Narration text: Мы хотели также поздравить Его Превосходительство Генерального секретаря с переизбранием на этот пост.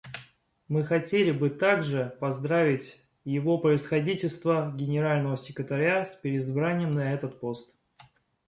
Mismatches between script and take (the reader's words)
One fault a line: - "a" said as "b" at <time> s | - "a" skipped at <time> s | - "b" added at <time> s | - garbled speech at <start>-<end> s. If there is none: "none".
- "бы" added at 1.3 s